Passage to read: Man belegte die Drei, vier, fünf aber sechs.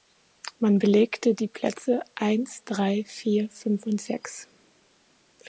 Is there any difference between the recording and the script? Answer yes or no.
yes